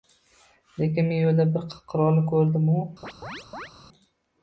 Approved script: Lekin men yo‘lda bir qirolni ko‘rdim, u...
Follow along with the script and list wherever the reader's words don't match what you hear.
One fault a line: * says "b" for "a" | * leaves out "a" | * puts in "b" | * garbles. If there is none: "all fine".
all fine